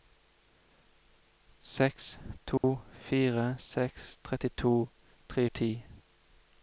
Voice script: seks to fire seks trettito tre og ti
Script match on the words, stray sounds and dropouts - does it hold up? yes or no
no